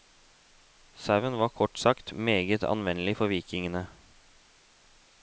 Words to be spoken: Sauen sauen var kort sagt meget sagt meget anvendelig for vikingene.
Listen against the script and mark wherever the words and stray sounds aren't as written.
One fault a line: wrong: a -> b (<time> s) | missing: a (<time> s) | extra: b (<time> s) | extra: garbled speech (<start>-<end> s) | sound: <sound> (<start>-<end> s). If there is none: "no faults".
missing: sauen (1.4 s)
missing: sagt meget (2.6 s)